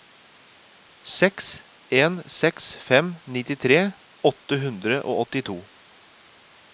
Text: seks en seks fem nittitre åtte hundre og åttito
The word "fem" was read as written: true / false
true